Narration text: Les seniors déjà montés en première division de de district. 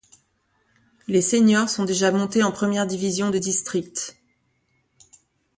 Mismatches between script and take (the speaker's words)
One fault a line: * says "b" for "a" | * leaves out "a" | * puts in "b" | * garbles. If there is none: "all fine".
* puts in "sont"
* leaves out "de"